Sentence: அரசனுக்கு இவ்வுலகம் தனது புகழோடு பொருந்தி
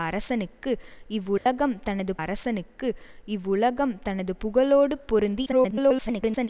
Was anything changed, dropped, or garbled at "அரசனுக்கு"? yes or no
no